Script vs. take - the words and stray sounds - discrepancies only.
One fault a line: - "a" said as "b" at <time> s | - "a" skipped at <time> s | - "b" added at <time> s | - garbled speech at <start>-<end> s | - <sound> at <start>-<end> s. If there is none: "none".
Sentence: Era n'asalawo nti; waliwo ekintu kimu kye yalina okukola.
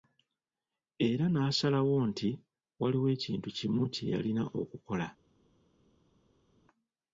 none